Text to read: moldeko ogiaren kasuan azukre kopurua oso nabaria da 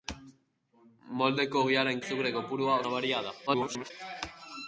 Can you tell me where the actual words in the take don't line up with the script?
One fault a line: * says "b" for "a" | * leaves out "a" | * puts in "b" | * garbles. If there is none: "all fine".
* leaves out "kasuan"
* leaves out "oso"
* garbles